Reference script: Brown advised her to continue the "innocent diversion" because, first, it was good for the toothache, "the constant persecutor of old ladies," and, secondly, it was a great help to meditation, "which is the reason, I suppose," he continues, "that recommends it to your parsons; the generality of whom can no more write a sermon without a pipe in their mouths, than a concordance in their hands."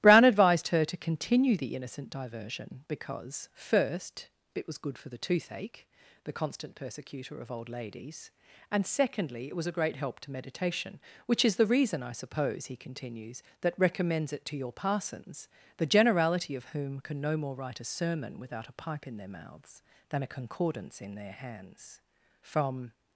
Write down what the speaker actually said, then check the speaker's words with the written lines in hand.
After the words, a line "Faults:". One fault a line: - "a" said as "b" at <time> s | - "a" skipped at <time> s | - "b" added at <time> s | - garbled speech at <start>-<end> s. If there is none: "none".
Brown advised her to continue the "innocent diversion" because, first, it was good for the toothache, "the constant persecutor of old ladies," and, secondly, it was a great help to meditation, "which is the reason, I suppose," he continues, "that recommends it to your parsons; the generality of whom can no more write a sermon without a pipe in their mouths, than a concordance in their hands." From
Faults:
- "From" added at 22.4 s